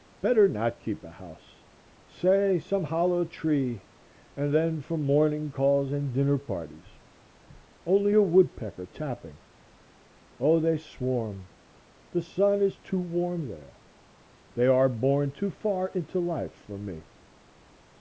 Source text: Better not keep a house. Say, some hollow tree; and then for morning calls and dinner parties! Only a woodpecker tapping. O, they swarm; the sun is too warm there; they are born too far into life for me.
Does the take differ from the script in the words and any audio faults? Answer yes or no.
no